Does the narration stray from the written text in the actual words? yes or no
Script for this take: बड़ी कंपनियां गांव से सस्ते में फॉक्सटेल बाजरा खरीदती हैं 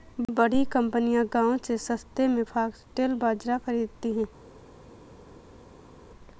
no